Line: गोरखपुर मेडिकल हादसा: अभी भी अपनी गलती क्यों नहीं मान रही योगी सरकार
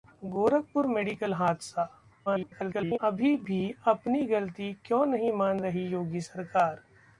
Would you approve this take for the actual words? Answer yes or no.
no